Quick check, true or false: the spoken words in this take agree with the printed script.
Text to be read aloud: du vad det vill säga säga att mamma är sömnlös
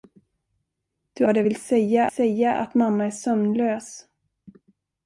true